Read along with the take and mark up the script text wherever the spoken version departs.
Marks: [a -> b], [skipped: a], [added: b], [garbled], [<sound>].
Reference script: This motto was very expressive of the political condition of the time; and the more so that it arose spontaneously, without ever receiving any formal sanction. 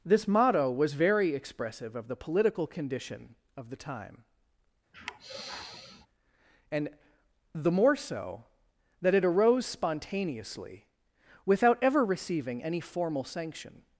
This motto was very expressive of the political condition of the time; [sigh] and the more so that it arose spontaneously, without ever receiving any formal sanction.